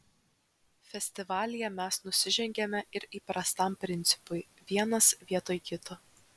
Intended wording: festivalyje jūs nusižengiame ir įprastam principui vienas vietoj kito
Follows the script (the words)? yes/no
no